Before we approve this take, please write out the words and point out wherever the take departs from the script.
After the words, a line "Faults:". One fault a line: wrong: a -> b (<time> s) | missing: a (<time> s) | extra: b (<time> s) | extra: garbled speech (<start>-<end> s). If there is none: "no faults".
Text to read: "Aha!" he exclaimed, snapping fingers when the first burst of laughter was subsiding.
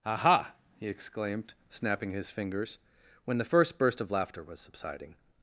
"Aha!" he exclaimed, snapping his fingers when the first burst of laughter was subsiding.
Faults:
extra: his (2.1 s)